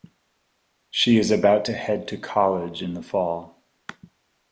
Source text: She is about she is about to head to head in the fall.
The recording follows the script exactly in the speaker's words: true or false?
false